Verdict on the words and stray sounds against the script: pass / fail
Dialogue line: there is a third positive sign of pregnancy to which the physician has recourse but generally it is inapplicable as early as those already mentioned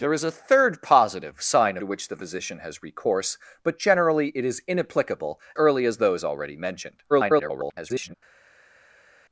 fail